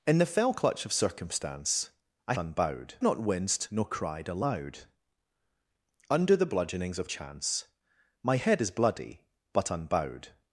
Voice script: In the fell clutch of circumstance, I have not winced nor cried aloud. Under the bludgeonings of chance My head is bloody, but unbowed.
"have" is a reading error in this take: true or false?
true